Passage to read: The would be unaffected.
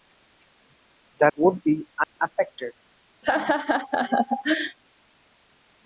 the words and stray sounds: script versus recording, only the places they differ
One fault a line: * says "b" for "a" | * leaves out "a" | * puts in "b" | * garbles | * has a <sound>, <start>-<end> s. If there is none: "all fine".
* has a dropout, 2.0-2.2 s
* has a laugh, 3.2-4.8 s